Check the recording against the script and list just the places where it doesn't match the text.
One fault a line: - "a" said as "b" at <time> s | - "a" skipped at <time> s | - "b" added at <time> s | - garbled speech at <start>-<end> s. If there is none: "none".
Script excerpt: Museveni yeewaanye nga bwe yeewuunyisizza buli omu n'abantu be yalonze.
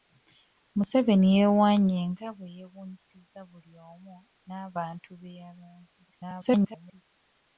- garbled speech at 6.1-7.0 s